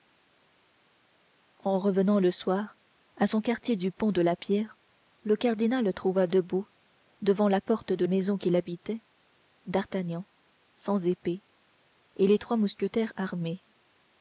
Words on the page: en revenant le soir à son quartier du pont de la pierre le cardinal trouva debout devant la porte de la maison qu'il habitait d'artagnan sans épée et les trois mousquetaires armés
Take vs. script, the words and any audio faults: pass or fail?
fail